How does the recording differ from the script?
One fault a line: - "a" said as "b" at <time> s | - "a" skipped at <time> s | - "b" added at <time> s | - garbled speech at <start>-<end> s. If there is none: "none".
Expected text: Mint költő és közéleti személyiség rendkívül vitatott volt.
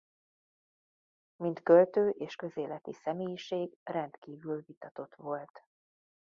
none